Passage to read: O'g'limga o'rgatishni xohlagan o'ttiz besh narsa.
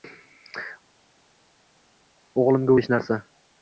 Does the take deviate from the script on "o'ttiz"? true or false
true